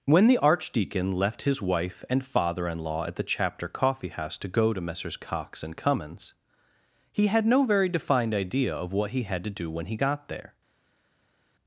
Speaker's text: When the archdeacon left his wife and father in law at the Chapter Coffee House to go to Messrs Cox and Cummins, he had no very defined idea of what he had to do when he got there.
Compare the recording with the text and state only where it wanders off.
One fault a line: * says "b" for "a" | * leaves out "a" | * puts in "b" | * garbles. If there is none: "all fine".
all fine